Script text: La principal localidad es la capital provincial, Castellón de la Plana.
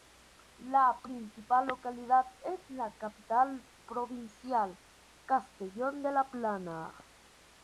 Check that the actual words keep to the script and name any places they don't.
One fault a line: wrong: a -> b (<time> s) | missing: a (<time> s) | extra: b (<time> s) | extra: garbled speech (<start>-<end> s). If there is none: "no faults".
no faults